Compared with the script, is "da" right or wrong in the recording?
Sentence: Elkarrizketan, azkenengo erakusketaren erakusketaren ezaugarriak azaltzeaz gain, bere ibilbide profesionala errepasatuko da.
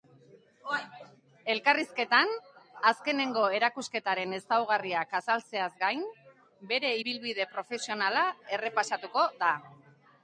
right